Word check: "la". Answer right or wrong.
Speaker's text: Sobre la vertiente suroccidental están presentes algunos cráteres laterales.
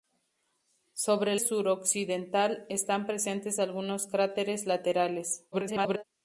wrong